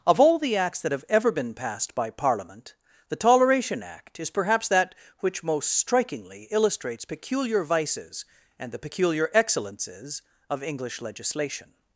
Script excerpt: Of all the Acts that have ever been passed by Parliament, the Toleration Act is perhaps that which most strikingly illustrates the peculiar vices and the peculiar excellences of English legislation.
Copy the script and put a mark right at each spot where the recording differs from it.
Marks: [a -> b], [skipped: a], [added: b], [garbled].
Of all the Acts that have ever been passed by Parliament, the Toleration Act is perhaps that which most strikingly illustrates [skipped: the] peculiar vices and the peculiar excellences of English legislation.